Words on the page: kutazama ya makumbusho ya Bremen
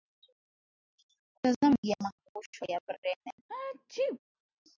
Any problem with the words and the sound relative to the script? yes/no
yes